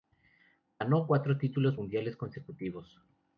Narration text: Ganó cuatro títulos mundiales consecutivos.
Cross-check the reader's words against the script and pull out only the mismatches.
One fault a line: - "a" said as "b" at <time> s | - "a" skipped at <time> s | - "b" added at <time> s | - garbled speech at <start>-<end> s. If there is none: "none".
none